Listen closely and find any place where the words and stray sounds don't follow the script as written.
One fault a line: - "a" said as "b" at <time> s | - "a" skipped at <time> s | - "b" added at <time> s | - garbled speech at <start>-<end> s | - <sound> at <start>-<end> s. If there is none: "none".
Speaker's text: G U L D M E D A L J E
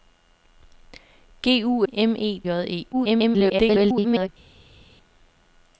- "L D" skipped at 1.9 s
- "D A L" skipped at 2.4 s
- garbled speech at 2.9-4.3 s